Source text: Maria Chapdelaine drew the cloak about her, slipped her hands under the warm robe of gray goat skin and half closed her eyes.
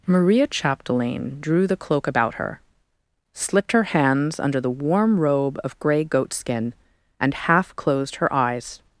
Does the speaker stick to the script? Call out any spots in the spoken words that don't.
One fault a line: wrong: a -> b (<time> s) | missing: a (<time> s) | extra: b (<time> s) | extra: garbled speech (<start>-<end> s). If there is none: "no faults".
no faults